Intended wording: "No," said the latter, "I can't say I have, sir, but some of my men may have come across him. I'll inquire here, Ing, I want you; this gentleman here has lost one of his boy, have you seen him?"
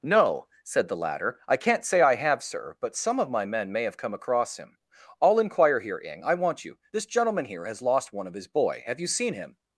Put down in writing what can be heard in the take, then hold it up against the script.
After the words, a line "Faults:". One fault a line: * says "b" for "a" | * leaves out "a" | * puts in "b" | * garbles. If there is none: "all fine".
"No," said the latter, "I can't say I have, sir, but some of my men may have come across him. I'll inquire here, Ing, I want you; this gentleman here has lost one of his boy, have you seen him?"
Faults:
all fine